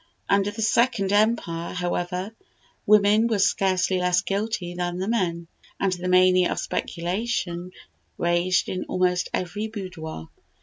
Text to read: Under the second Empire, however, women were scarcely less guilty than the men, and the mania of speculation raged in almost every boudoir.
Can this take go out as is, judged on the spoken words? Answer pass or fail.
pass